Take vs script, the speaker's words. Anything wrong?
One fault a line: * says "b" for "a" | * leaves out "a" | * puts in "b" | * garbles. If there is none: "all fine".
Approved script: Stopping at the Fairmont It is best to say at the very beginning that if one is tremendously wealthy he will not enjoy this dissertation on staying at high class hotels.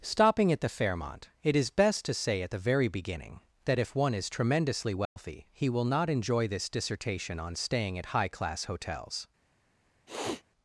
all fine